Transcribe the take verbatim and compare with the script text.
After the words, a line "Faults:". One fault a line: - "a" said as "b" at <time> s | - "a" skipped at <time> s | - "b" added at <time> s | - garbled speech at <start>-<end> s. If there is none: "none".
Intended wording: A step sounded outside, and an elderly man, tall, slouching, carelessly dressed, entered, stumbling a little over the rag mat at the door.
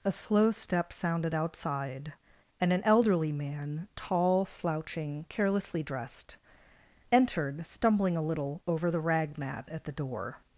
A slow step sounded outside, and an elderly man, tall, slouching, carelessly dressed, entered, stumbling a little over the rag mat at the door.
Faults:
- "slow" added at 0.1 s